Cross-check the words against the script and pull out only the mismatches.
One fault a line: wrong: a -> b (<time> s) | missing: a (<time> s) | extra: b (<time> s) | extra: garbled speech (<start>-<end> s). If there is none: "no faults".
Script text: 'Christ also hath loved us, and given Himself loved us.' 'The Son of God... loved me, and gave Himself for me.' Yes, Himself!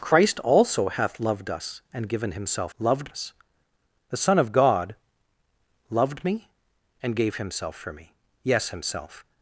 no faults